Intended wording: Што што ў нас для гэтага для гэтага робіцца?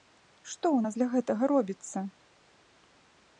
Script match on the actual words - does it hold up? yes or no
no